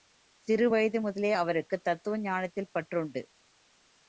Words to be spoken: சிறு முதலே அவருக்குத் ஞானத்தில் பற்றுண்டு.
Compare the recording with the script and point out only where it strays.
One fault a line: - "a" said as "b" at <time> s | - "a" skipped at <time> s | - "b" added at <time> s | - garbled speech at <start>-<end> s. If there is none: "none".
- "வயது" added at 0.7 s
- "தத்துவ" added at 1.8 s